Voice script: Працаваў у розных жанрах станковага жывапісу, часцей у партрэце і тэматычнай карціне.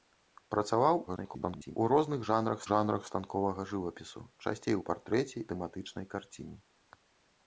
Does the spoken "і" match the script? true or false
false